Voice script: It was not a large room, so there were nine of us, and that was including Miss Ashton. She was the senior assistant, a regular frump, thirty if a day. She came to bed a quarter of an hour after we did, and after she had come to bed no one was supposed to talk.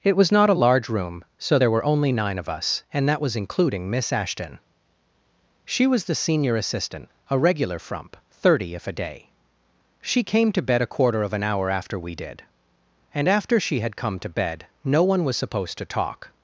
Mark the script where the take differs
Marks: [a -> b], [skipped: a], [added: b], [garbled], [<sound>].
It was not a large room, so there were [added: only] nine of us, and that was including Miss Ashton. She was the senior assistant, a regular frump, thirty if a day. She came to bed a quarter of an hour after we did, and after she had come to bed no one was supposed to talk.